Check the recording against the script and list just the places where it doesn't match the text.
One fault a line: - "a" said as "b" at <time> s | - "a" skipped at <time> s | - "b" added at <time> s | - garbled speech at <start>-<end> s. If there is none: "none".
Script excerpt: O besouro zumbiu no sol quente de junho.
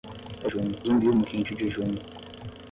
- "besouro" said as "junho" at 0.5 s
- "sol" skipped at 1.3 s